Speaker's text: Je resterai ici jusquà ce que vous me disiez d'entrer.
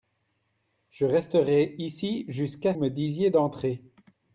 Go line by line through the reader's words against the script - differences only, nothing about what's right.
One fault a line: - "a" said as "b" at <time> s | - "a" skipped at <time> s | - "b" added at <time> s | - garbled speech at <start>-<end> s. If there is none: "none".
- "ce que vous" skipped at 2.7 s